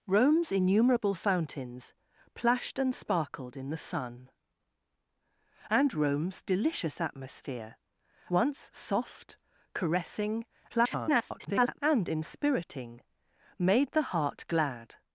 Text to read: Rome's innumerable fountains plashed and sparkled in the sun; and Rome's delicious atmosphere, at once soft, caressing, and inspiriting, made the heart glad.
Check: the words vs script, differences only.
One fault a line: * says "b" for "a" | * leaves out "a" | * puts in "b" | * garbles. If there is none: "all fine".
* leaves out "at"
* garbles